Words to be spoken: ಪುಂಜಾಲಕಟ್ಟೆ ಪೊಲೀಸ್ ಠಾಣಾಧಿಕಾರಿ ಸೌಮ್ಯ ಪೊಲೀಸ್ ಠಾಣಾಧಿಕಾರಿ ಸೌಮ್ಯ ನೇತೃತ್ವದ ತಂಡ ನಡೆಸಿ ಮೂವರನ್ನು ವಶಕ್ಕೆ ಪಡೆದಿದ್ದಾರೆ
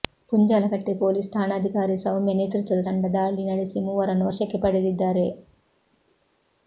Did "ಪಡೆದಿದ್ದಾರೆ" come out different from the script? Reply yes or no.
no